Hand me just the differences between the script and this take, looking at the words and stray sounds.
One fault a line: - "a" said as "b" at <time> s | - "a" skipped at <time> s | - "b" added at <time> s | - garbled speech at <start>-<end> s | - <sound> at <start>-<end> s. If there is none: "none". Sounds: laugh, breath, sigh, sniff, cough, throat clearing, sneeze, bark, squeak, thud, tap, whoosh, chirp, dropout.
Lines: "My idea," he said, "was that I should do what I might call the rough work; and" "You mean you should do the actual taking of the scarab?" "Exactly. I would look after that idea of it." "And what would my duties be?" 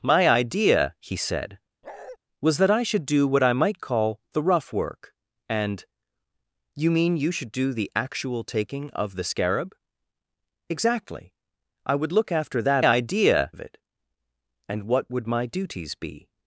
- bark at 1.8-2.2 s